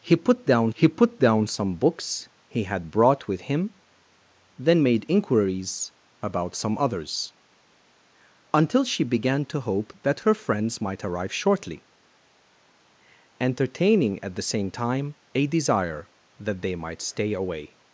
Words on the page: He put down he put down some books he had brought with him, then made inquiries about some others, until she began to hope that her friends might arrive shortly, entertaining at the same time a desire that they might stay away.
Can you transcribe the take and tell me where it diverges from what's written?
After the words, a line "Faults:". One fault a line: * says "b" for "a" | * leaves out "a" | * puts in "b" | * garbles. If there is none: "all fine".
He put down he put down some books he had brought with him, then made inquiries about some others, until she began to hope that her friends might arrive shortly, entertaining at the same time a desire that they might stay away.
Faults:
all fine